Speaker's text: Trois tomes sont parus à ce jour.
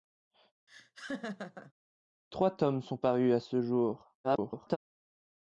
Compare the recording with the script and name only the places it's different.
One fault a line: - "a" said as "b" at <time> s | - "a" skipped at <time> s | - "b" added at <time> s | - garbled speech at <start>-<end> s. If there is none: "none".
- garbled speech at 4.2-4.8 s